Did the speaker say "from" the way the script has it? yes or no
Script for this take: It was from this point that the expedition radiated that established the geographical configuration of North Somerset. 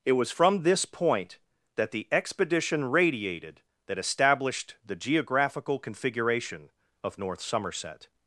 yes